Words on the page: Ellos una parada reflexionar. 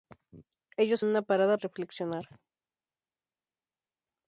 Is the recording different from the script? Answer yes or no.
no